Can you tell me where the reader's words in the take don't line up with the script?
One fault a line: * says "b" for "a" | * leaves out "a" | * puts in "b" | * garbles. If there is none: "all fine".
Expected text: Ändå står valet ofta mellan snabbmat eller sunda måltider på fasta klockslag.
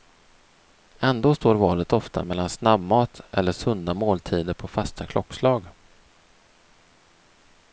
all fine